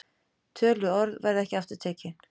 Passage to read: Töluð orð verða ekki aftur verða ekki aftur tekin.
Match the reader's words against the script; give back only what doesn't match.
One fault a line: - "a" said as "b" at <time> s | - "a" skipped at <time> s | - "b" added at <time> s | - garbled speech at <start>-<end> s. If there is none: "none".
- "verða ekki aftur" skipped at 1.8 s